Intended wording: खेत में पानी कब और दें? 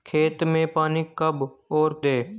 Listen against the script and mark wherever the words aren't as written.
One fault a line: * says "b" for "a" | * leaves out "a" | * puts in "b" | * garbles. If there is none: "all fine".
all fine